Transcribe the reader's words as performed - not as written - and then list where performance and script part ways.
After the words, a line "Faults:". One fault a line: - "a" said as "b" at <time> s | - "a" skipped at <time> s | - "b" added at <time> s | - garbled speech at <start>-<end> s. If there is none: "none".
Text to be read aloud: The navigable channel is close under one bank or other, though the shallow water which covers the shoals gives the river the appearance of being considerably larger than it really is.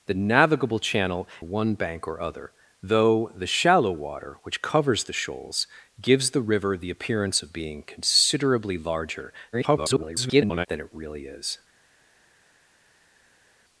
The navigable channel one bank or other, though the shallow water which covers the shoals gives the river the appearance of being considerably larger [garbled] than it really is.
Faults:
- "is close under" skipped at 1.3 s
- garbled speech at 9.5-10.7 s